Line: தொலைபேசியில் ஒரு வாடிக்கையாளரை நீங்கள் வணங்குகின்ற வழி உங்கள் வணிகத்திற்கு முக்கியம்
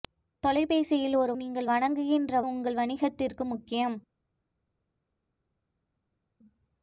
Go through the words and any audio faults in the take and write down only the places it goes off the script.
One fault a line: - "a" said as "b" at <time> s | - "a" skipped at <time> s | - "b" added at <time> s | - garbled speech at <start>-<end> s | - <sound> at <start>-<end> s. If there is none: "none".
- "வாடிக்கையாளரை" skipped at 1.3 s
- "வழி" skipped at 2.4 s